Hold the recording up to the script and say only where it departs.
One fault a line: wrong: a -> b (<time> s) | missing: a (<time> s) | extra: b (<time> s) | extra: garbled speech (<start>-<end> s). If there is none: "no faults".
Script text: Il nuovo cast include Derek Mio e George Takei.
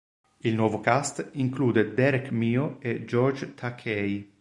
no faults